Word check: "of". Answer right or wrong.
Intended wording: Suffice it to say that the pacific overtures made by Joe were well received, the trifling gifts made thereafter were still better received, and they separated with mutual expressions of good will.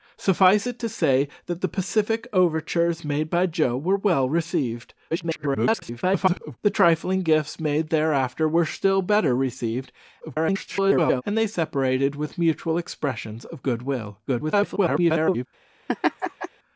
right